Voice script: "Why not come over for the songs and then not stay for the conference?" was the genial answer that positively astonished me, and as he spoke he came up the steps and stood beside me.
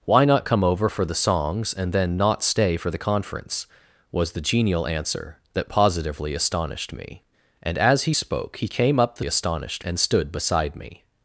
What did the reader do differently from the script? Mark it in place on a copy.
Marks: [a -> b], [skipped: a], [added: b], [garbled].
"Why not come over for the songs and then not stay for the conference?" was the genial answer that positively astonished me, and as he spoke he came up the [steps -> astonished] and stood beside me.